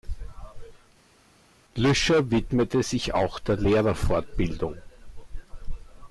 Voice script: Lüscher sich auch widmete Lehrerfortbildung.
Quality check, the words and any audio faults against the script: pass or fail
fail